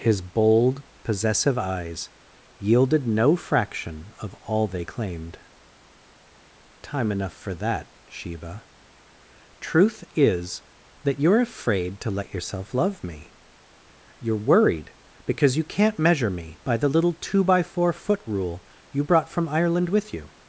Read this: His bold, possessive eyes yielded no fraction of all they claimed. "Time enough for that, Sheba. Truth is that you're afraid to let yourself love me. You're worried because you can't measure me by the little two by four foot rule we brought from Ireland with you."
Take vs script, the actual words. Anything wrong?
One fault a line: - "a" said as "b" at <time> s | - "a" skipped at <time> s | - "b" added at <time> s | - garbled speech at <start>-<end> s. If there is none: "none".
- "we" said as "you" at 18.9 s